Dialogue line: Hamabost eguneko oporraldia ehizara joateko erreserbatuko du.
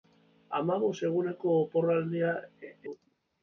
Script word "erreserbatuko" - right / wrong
wrong